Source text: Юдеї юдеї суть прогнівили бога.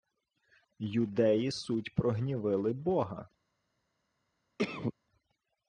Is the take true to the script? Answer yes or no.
no